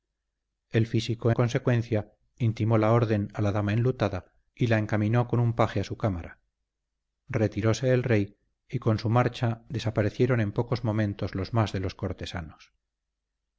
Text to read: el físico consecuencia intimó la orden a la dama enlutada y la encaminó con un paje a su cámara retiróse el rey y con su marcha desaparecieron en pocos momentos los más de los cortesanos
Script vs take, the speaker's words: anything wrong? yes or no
no